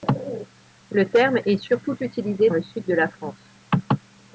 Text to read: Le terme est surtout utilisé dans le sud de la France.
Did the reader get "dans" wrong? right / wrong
wrong